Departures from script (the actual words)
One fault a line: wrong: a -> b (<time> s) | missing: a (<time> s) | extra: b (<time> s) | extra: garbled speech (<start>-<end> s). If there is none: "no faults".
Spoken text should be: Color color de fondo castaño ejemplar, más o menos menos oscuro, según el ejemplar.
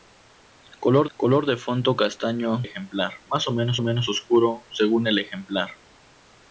no faults